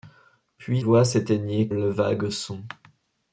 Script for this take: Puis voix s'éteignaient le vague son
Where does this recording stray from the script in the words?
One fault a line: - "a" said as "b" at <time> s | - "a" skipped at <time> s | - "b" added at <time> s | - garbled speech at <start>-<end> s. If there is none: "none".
none